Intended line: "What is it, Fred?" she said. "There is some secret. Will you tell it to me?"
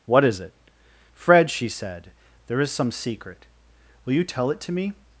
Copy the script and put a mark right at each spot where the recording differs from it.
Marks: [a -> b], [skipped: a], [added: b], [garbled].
"What is it, Fred?" she said. "There is some secret. Will you tell it to me?"